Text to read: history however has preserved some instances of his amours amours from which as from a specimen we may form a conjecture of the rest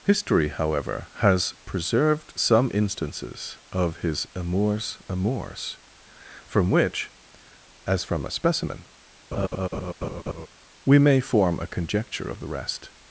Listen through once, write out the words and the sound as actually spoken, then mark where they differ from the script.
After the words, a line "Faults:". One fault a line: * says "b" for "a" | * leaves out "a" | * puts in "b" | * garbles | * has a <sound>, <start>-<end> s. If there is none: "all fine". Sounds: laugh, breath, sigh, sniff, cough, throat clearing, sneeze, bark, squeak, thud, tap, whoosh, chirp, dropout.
history however has preserved some instances of his amours amours from which as from a specimen we may form a conjecture of the rest
Faults:
* has a laugh, 9.3-10.5 s